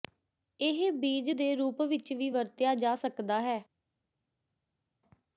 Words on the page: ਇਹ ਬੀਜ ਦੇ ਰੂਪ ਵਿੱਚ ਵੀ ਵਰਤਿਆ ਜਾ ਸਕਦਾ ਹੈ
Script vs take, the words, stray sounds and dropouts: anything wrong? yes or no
no